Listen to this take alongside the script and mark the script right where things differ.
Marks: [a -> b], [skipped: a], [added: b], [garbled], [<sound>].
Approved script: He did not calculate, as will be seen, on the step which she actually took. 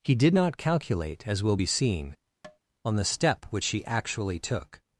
He did not calculate, as will be seen, [tap] on the step which she actually took.